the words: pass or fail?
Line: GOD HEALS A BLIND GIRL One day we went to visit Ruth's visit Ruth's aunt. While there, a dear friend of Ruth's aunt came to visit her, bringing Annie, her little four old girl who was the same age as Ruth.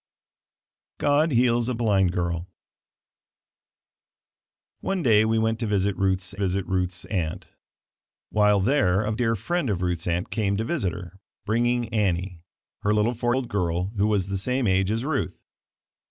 pass